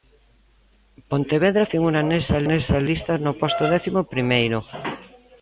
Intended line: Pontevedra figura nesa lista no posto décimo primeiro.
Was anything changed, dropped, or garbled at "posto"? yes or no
no